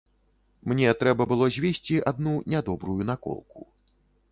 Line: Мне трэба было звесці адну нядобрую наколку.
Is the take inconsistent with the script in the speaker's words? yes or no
no